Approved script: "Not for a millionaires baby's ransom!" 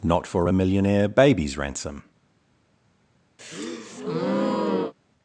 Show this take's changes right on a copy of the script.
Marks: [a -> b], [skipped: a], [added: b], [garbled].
"Not for a [millionaires -> millionaire] baby's ransom!"